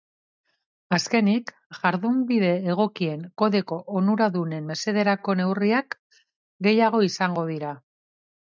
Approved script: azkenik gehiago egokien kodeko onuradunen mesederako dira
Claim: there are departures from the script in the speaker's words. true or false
true